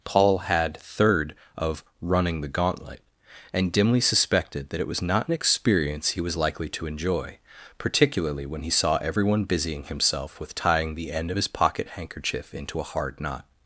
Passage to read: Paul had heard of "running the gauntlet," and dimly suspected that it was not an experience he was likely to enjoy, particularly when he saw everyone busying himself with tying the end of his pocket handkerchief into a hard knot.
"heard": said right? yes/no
no